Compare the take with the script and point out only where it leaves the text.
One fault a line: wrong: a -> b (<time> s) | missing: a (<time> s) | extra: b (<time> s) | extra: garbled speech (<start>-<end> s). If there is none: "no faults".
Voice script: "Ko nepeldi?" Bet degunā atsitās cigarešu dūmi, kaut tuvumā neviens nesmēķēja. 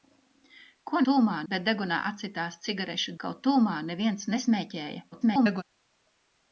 wrong: nepeldi -> tuvumā (1.1 s)
missing: dūmi (3.2 s)
extra: garbled speech (5.1-5.6 s)